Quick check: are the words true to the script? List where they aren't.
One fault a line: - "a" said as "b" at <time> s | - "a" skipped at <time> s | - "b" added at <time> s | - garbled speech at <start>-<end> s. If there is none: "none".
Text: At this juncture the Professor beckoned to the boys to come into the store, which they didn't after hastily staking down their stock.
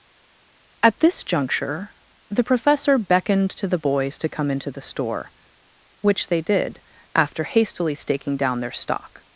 - "didn't" said as "did" at 6.4 s